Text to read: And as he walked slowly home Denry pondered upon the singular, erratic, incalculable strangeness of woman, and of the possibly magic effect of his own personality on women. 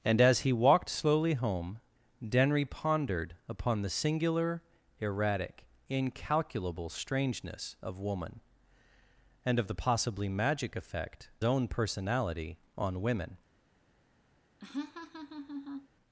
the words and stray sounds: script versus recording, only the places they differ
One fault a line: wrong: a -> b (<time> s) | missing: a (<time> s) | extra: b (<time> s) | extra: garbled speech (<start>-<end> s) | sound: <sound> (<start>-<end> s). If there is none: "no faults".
missing: of his (11.3 s)
sound: laugh (14.6-15.9 s)